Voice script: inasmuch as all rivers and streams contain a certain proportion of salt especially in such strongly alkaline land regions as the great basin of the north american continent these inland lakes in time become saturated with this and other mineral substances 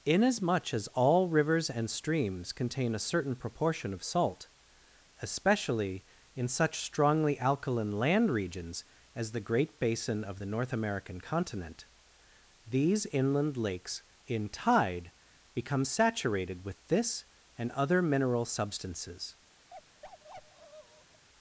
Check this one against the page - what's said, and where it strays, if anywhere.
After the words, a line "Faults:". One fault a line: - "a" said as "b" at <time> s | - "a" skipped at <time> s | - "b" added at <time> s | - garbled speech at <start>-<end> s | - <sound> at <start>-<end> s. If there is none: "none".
inasmuch as all rivers and streams contain a certain proportion of salt especially in such strongly alkaline land regions as the great basin of the north american continent these inland lakes in tide become saturated with this and other mineral substances
Faults:
- "time" said as "tide" at 14.5 s
- bark at 19.7-21.3 s